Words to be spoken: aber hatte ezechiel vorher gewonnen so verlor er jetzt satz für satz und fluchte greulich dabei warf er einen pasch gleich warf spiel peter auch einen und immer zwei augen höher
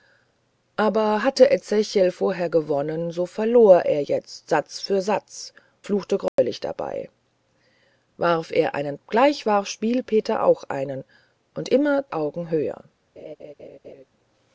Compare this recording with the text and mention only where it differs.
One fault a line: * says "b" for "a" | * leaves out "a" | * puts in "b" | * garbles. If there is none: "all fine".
* leaves out "und"
* leaves out "pasch"
* leaves out "zwei"